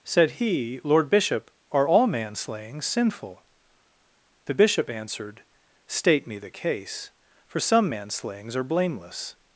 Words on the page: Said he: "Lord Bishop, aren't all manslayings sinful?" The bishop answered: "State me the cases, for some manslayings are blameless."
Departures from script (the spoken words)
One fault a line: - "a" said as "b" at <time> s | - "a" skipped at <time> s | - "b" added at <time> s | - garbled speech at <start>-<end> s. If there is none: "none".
- "aren't" said as "are" at 1.7 s
- "cases" said as "case" at 6.5 s